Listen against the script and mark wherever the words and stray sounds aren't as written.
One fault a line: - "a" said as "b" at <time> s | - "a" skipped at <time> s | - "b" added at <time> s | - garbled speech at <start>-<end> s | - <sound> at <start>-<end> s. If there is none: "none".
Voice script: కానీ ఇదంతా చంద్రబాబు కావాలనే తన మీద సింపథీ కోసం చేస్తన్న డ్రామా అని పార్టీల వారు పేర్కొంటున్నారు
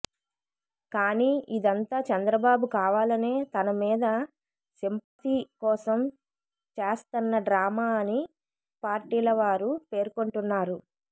- dropout at 5.0-5.2 s